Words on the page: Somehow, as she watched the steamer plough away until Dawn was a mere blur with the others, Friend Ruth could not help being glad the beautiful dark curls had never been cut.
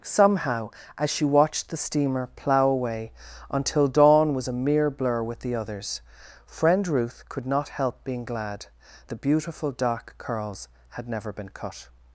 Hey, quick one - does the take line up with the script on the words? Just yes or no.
yes